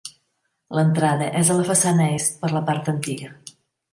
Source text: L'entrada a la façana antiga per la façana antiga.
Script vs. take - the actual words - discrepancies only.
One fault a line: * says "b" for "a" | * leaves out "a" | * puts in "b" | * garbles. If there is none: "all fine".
* puts in "és"
* says "est" for "antiga"
* says "part" for "façana"